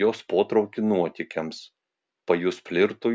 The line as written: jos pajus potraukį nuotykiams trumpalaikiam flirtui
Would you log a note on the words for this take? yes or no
yes